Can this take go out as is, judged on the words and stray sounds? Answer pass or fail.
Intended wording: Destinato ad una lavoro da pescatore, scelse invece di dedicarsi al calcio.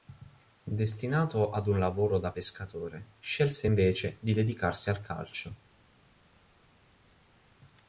fail